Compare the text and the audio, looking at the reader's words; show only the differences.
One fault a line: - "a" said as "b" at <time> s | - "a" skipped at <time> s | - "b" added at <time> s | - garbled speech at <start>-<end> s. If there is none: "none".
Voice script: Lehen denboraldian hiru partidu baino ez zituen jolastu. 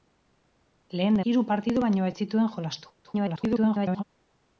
- "denboraldian" skipped at 1.2 s
- garbled speech at 3.0-4.0 s